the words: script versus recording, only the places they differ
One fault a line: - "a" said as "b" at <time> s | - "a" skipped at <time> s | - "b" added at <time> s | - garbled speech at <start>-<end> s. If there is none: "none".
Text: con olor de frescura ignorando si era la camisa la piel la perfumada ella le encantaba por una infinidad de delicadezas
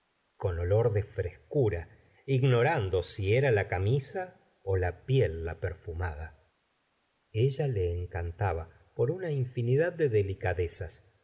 none